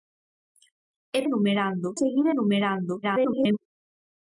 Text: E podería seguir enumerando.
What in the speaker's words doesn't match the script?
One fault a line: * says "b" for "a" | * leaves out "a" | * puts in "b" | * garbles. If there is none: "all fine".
* says "enumerando" for "podería"
* garbles